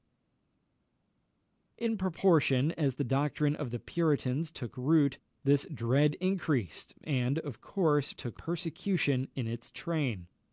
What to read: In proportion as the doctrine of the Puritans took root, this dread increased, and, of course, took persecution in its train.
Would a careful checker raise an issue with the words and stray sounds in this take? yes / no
no